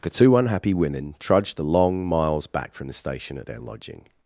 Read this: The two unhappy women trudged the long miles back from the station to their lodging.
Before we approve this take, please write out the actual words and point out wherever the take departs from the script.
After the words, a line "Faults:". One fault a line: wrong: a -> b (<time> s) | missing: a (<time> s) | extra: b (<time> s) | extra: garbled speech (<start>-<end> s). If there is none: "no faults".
The two unhappy women trudged the long miles back from the station at their lodging.
Faults:
wrong: to -> at (3.4 s)